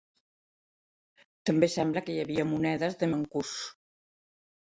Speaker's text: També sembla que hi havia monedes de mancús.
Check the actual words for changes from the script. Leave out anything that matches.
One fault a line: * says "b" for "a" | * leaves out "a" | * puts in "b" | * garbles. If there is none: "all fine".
all fine